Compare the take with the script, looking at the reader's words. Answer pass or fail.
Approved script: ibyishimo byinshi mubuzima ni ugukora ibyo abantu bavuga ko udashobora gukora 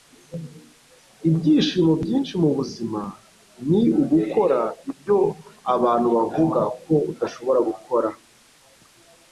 pass